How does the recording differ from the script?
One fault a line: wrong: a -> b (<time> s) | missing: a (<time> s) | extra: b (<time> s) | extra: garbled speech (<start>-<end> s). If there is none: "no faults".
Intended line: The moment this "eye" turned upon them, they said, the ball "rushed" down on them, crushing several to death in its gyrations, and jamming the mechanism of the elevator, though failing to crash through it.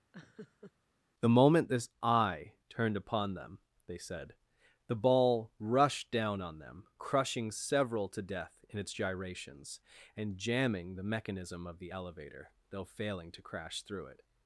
no faults